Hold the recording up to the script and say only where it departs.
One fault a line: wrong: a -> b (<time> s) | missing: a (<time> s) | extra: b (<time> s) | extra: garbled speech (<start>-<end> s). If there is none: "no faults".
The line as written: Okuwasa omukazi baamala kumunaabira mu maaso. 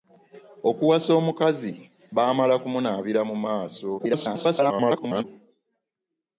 extra: garbled speech (4.0-5.2 s)